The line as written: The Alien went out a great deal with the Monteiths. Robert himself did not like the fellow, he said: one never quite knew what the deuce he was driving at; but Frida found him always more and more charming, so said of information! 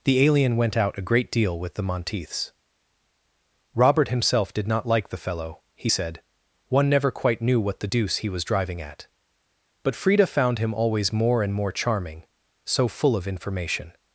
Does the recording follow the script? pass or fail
fail